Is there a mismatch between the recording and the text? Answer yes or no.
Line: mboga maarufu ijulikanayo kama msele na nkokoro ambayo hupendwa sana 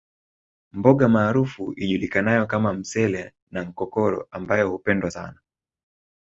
no